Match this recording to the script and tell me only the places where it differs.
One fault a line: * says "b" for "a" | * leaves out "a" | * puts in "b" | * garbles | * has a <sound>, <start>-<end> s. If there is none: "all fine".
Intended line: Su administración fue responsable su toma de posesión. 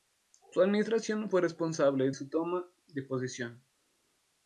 all fine